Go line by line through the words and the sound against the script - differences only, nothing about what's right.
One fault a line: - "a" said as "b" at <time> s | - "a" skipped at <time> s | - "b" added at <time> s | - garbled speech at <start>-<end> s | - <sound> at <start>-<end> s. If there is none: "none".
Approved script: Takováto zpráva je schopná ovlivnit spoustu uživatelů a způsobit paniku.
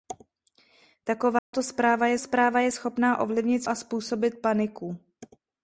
- dropout at 1.4-1.5 s
- "zpráva je" added at 2.2 s
- "spoustu uživatelů" skipped at 3.6 s